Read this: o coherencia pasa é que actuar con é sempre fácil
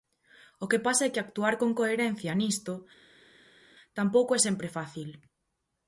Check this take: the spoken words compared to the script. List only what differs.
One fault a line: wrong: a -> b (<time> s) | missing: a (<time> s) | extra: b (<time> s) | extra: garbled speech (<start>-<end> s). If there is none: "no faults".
wrong: coherencia -> que (0.7 s)
extra: coherencia nisto tampouco (1.8 s)